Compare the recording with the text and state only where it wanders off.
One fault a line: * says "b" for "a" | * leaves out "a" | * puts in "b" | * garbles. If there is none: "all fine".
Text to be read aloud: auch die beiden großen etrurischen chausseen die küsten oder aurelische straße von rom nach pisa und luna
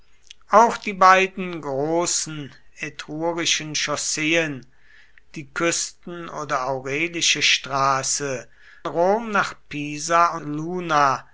* leaves out "von"
* leaves out "und"